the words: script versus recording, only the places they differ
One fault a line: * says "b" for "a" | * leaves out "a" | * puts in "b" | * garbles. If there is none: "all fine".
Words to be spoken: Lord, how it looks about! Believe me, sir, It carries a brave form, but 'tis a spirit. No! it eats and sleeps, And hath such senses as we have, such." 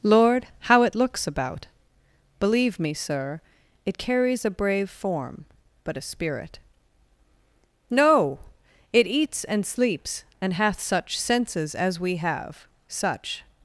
* leaves out "tis"